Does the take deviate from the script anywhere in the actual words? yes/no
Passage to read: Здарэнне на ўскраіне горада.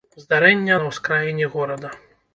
no